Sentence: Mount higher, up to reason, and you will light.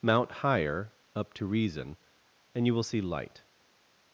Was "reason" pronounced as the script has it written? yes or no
yes